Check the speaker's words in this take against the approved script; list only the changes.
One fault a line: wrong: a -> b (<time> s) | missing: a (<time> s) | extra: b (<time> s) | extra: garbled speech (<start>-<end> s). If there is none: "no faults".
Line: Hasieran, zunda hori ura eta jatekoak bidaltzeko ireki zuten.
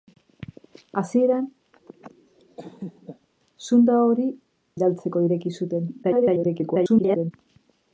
missing: ura eta jatekoak (4.3 s)
extra: garbled speech (6.0-7.3 s)